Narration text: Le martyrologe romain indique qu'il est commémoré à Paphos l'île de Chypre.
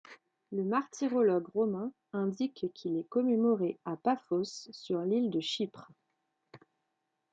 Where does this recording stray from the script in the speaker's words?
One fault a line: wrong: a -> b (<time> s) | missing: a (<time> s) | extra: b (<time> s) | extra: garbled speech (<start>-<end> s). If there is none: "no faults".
extra: sur (4.7 s)